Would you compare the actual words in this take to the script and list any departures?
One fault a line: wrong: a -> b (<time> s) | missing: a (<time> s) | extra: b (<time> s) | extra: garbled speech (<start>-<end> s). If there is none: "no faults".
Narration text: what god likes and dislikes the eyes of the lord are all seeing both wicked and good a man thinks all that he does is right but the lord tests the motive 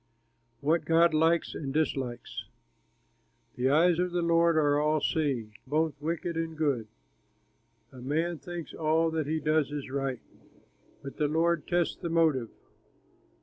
no faults